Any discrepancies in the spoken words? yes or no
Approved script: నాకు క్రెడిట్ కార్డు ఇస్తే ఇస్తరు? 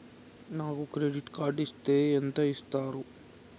yes